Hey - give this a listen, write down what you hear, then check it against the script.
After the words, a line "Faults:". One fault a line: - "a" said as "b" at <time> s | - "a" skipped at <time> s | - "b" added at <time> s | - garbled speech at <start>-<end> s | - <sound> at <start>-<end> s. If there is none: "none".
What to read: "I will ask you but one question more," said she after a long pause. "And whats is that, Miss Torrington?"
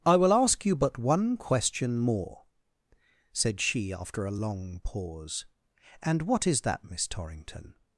"I will ask you but one question more," said she after a long pause. "And what is that, Miss Torrington?"
Faults:
- "whats" said as "what" at 6.2 s